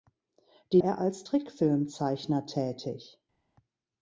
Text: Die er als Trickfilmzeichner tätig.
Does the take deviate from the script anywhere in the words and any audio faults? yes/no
no